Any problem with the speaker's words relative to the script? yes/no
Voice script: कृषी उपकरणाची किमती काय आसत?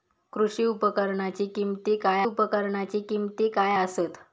yes